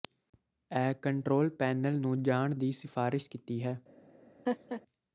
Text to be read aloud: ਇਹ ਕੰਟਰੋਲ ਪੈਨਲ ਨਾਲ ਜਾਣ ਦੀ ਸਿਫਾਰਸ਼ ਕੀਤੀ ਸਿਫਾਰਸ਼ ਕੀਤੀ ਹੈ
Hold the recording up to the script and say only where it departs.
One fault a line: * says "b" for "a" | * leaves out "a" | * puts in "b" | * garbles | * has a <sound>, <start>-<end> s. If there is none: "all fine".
* says "ਨੂੰ" for "ਨਾਲ"
* leaves out "ਸਿਫਾਰਸ਼ ਕੀਤੀ"
* has a laugh, 4.5-4.8 s